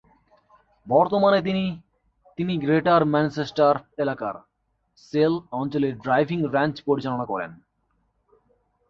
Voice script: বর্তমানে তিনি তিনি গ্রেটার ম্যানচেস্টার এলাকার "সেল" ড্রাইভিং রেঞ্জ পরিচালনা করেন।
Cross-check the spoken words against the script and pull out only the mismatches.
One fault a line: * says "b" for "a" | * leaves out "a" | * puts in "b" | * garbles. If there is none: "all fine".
* puts in "অঞ্চলে"